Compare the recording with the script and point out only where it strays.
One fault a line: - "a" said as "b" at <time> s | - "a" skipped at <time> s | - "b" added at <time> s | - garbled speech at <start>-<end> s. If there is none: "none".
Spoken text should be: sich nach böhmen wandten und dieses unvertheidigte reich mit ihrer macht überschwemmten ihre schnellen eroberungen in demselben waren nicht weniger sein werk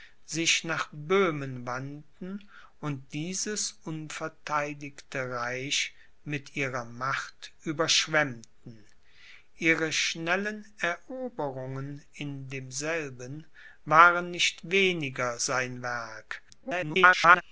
- garbled speech at 16.5-17.4 s